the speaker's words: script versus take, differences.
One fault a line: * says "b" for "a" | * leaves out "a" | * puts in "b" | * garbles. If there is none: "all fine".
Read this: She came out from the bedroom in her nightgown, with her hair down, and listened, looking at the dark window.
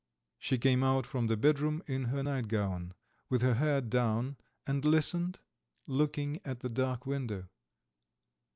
all fine